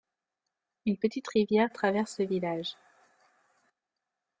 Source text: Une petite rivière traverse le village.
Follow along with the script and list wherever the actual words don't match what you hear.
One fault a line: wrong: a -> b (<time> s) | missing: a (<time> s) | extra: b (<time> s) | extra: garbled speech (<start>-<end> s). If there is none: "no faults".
no faults